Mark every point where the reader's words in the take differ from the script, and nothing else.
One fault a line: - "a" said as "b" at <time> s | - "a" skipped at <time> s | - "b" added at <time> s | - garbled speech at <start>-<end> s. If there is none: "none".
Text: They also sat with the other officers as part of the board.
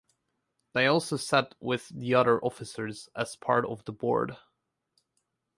none